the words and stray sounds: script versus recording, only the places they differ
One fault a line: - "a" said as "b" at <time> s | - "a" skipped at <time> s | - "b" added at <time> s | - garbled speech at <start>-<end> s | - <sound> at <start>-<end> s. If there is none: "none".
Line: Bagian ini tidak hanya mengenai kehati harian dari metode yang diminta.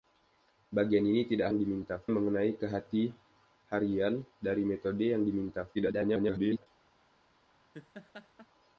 - "hanya" said as "diminta" at 1.5 s
- garbled speech at 5.7-6.7 s
- laugh at 7.7-8.5 s